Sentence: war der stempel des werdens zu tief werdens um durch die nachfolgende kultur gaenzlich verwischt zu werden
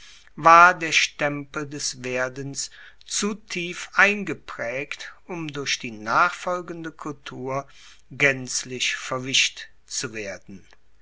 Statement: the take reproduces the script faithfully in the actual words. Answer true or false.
false